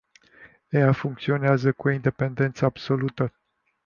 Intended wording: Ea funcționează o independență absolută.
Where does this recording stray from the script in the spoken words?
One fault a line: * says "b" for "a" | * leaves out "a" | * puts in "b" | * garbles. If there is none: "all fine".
* puts in "cu"